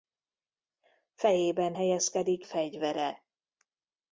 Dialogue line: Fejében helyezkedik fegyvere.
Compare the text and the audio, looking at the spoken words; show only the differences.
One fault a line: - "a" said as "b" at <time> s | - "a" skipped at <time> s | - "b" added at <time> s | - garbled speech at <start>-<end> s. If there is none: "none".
none